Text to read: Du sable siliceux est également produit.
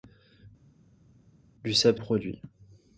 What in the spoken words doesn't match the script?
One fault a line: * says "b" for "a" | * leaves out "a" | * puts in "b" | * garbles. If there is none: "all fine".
* leaves out "siliceux est également"